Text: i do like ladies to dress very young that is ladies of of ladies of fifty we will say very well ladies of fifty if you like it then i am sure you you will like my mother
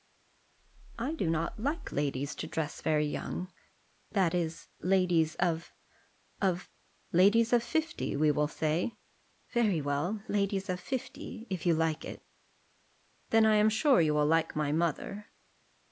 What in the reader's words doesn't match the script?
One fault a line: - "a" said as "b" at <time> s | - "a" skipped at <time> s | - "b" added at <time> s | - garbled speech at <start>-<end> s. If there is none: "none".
- "not" added at 1.3 s
- "you" skipped at 14.2 s